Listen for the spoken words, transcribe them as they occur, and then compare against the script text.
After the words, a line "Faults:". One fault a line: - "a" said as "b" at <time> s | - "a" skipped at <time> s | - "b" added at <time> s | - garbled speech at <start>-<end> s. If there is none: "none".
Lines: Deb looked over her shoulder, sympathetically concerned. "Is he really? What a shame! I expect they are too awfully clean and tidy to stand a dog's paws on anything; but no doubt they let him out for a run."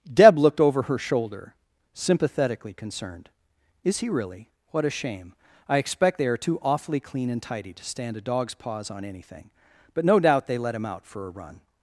Deb looked over her shoulder, sympathetically concerned. "Is he really? What a shame! I expect they are too awfully clean and tidy to stand a dog's paws on anything; but no doubt they let him out for a run."
Faults:
none